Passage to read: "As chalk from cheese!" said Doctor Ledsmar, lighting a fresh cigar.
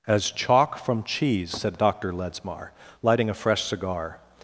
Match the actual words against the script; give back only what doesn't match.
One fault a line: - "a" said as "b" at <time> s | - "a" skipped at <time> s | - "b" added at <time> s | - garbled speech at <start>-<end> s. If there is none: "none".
none